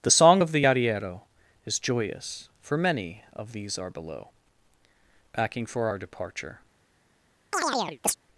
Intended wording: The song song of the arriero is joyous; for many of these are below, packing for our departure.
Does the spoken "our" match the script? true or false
true